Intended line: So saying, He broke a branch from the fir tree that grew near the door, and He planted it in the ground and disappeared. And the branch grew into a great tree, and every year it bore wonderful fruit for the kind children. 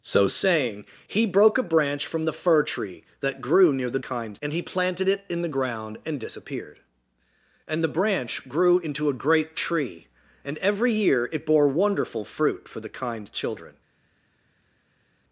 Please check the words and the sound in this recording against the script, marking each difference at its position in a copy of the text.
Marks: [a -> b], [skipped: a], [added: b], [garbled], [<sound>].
So saying, He broke a branch from the fir tree that grew near the [door, -> kind] and He planted it in the ground and disappeared. And the branch grew into a great tree, and every year it bore wonderful fruit for the kind children.